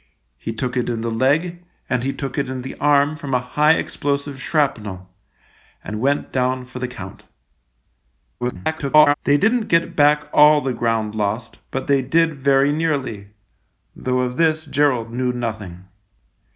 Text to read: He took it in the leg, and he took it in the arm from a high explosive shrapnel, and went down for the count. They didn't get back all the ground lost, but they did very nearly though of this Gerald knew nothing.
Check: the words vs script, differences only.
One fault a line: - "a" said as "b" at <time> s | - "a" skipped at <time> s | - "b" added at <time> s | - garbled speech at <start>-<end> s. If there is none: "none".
- garbled speech at 8.4-9.1 s